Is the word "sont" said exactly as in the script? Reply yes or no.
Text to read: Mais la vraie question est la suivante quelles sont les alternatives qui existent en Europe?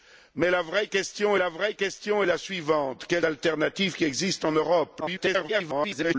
no